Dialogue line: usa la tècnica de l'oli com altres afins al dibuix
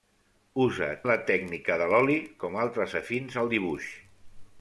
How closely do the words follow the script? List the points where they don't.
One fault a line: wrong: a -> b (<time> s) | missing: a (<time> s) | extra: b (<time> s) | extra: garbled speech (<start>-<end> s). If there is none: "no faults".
no faults